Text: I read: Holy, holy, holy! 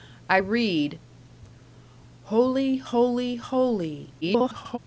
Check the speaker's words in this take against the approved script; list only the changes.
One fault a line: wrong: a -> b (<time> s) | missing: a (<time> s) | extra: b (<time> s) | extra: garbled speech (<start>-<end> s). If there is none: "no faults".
extra: garbled speech (4.2-4.8 s)